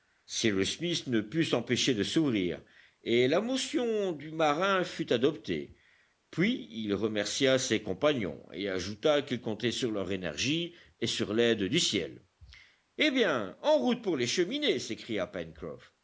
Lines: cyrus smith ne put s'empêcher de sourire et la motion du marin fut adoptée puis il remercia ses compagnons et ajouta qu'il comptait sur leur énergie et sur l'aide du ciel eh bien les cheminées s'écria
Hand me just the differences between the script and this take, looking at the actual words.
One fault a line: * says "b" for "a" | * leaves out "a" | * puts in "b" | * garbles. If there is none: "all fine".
* puts in "en route pour"